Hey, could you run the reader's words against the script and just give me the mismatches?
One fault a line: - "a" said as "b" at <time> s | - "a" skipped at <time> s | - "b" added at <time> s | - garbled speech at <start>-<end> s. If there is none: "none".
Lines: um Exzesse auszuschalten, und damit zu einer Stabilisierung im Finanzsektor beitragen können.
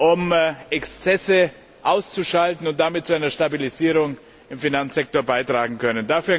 none